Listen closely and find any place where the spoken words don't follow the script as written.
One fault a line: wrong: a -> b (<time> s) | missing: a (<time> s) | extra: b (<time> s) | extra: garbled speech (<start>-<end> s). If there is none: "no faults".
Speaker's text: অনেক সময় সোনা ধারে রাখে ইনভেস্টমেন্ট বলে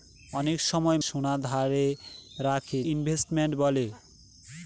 no faults